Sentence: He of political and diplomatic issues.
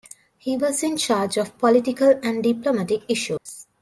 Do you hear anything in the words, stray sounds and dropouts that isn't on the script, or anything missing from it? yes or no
yes